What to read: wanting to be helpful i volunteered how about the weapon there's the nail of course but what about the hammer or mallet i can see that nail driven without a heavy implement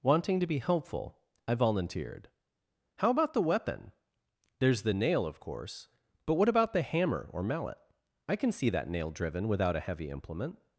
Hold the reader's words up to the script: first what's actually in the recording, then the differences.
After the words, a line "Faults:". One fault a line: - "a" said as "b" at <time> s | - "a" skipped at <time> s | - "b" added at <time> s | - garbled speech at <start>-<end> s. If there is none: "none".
wanting to be helpful i volunteered how about the weapon there's the nail of course but what about the hammer or mallet i can see that nail driven without a heavy implement
Faults:
none